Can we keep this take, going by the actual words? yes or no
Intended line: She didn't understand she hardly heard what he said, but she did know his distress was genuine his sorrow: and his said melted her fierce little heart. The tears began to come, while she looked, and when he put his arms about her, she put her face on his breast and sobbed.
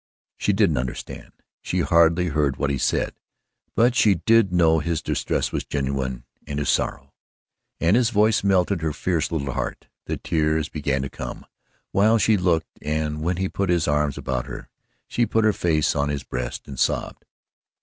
no